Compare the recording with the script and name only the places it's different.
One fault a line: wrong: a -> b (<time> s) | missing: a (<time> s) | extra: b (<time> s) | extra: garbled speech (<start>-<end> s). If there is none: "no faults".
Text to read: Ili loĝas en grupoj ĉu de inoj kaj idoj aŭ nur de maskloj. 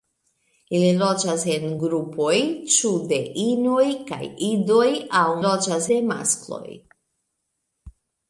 wrong: nur -> loĝas (5.4 s)